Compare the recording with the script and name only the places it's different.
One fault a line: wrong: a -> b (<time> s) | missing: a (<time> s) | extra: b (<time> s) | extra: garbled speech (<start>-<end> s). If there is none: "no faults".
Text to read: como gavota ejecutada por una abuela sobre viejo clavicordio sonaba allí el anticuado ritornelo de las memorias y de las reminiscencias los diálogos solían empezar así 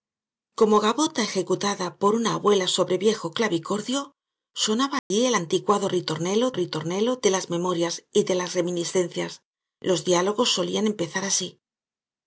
extra: ritornelo (6.5 s)